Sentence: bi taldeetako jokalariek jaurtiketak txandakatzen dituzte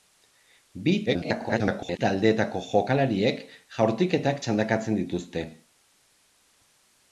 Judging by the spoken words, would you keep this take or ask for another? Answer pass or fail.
fail